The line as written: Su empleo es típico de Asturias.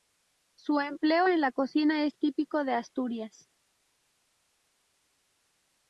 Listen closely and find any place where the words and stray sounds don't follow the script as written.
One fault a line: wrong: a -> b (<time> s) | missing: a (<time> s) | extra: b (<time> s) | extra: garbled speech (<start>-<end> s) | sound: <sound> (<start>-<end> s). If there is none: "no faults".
extra: en la cocina (1.3 s)